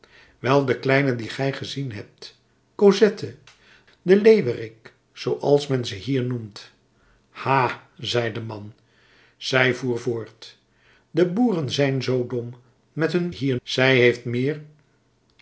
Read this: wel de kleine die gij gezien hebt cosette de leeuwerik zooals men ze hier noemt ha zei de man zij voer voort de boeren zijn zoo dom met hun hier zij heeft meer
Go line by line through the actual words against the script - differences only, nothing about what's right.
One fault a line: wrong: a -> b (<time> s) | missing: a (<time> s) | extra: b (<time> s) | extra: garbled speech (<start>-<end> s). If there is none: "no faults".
no faults